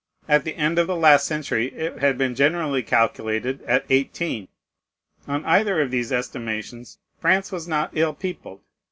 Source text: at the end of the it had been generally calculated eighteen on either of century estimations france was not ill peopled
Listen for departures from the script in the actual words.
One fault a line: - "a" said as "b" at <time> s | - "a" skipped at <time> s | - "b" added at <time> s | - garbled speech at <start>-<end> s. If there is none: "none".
- "last century" added at 0.9 s
- "at" added at 3.6 s
- "century" said as "these" at 5.9 s